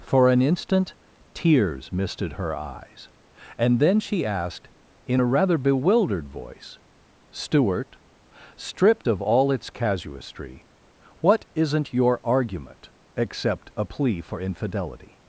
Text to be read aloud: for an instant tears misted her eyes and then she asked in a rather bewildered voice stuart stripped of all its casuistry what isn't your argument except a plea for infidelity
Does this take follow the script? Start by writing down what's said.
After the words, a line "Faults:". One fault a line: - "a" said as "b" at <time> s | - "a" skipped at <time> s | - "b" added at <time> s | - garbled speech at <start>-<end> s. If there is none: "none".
for an instant tears misted her eyes and then she asked in a rather bewildered voice stuart stripped of all its casuistry what isn't your argument except a plea for infidelity
Faults:
none